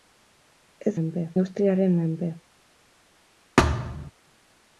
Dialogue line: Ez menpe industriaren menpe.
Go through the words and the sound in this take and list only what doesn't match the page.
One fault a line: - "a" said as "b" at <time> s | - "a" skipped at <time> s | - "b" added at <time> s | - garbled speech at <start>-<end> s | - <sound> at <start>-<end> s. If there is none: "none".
- thud at 3.6-4.1 s